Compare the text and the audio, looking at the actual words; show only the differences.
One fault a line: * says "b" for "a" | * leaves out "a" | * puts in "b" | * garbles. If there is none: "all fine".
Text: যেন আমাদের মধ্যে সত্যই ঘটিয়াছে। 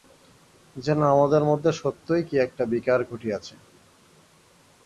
* puts in "কী একটা বিকার"